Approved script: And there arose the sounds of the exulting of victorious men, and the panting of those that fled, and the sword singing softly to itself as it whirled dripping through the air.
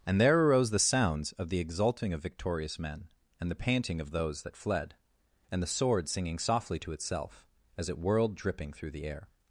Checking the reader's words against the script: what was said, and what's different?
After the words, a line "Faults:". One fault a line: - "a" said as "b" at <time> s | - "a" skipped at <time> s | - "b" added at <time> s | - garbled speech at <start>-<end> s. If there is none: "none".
And there arose the sounds of the exulting of victorious men, and the panting of those that fled, and the sword singing softly to itself as it whirled dripping through the air.
Faults:
none